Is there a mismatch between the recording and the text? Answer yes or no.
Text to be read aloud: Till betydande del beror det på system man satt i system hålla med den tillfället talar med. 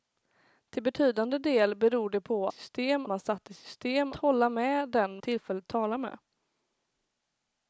no